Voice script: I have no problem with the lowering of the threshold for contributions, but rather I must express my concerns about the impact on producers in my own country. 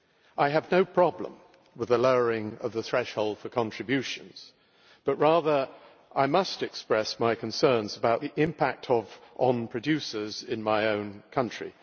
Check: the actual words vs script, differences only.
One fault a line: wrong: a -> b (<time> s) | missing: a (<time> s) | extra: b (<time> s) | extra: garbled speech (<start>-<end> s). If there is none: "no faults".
no faults